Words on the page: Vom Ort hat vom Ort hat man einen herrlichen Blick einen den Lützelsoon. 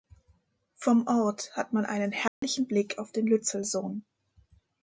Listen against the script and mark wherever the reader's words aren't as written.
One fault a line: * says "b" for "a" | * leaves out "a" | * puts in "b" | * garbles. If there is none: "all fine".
* leaves out "vom Ort hat"
* says "auf" for "einen"